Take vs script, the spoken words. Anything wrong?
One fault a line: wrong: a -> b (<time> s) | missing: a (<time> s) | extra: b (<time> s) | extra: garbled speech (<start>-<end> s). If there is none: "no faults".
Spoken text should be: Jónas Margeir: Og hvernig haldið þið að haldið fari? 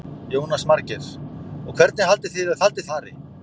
no faults